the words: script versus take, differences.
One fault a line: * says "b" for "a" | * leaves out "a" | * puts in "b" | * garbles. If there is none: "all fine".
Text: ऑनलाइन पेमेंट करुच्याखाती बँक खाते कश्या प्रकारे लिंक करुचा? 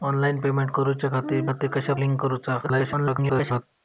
* leaves out "बँक"
* leaves out "प्रकारे"
* garbles